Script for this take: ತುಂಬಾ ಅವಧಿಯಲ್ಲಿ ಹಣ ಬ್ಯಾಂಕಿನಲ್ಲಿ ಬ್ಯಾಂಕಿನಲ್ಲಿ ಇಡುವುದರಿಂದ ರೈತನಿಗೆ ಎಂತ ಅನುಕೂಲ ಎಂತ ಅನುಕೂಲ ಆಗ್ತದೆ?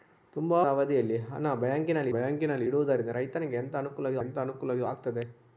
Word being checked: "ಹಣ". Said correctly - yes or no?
yes